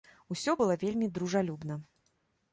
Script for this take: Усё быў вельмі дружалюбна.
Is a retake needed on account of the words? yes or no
yes